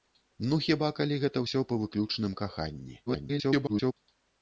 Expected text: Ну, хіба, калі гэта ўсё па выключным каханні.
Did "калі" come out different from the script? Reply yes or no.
no